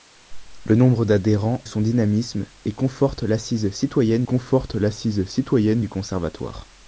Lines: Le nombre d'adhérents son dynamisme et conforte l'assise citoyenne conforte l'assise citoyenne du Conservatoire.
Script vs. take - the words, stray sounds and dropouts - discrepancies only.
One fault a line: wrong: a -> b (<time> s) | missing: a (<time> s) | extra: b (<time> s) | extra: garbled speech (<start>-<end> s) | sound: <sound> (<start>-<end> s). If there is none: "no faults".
no faults